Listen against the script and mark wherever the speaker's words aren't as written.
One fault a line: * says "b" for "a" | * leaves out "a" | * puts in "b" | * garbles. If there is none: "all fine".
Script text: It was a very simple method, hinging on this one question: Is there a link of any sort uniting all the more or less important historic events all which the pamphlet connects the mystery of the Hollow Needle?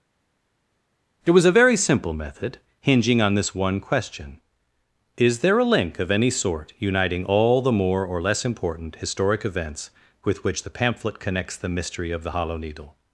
* says "with" for "all"